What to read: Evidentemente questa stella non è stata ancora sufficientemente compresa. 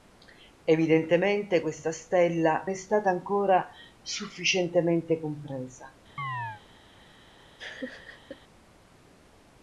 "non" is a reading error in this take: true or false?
true